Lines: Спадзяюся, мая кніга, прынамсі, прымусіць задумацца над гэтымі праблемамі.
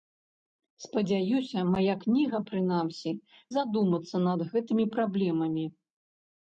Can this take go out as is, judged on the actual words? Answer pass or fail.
fail